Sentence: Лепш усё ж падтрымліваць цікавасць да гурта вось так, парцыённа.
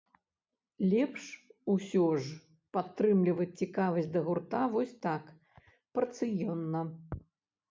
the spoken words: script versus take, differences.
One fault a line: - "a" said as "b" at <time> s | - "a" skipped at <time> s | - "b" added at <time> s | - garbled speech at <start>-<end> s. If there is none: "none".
none